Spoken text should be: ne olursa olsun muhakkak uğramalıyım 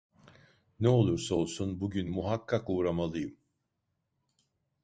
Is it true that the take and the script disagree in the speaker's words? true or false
true